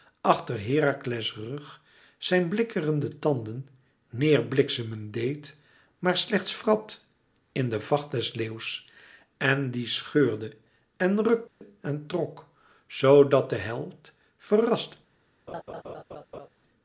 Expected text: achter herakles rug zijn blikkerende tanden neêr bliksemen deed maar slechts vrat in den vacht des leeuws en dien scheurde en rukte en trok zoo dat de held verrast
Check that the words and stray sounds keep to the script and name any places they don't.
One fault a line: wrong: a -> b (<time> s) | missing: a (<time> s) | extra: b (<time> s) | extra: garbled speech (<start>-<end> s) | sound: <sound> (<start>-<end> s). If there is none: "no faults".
sound: dropout (11.5-11.6 s)
sound: laugh (15.5-16.5 s)